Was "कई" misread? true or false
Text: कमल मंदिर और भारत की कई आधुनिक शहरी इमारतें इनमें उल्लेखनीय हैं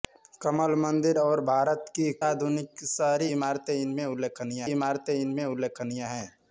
true